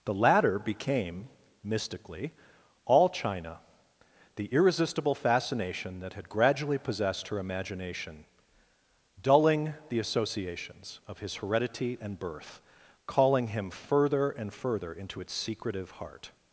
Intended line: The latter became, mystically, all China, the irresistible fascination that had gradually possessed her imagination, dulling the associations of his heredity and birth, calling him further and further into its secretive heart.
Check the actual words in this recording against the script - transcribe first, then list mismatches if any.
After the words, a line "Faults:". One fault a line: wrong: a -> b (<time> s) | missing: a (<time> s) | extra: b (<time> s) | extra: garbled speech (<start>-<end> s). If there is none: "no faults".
The latter became, mystically, all China, the irresistible fascination that had gradually possessed her imagination, dulling the associations of his heredity and birth, calling him further and further into its secretive heart.
Faults:
no faults